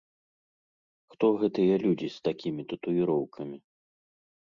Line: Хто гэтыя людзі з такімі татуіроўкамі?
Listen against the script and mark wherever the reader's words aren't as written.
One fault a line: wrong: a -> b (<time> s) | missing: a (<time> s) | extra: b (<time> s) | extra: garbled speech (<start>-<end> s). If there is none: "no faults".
no faults